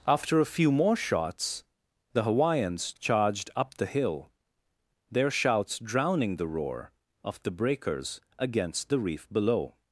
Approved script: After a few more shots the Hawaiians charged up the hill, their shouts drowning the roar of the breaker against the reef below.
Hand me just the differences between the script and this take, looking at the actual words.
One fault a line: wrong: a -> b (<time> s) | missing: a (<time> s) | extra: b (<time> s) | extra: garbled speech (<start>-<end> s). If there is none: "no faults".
wrong: breaker -> breakers (7.5 s)